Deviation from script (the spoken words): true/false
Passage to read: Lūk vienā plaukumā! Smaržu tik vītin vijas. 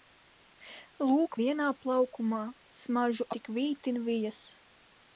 false